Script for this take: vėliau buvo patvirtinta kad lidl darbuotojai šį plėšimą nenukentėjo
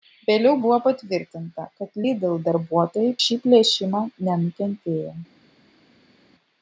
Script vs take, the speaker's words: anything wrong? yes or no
no